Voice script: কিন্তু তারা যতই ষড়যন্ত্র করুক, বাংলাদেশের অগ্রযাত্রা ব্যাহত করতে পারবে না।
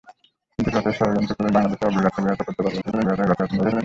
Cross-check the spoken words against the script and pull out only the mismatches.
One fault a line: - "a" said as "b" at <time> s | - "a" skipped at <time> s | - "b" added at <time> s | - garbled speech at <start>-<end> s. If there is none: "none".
- "তারা" skipped at 0.7 s
- garbled speech at 2.8-3.8 s